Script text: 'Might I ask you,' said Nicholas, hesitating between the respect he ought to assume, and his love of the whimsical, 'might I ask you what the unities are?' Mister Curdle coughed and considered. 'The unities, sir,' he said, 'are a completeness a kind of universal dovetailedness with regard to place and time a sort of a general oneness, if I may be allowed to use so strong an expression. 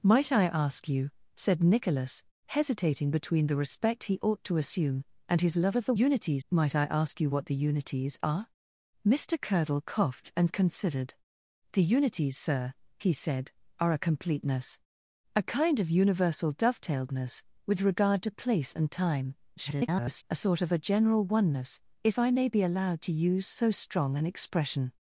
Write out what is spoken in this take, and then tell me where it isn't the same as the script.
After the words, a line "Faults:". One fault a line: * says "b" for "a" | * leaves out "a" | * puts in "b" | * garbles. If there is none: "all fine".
'Might I ask you,' said Nicholas, hesitating between the respect he ought to assume, and his love of the unities, 'might I ask you what the unities are?' Mister Curdle coughed and considered. 'The unities, sir,' he said, 'are a completeness a kind of universal dovetailedness with regard to place and time [garbled] a sort of a general oneness, if I may be allowed to use so strong an expression.
Faults:
* says "unities" for "whimsical"
* garbles